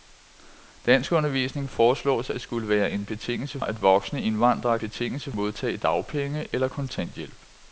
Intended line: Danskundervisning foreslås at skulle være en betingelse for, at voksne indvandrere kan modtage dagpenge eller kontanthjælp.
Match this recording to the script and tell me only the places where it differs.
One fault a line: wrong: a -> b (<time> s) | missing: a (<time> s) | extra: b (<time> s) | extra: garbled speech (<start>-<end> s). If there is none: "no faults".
missing: for (3.6 s)
wrong: kan -> betingelse (4.8 s)